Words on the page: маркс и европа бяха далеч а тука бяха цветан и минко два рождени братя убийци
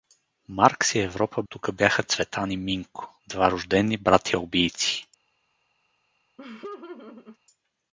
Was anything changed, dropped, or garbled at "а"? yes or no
yes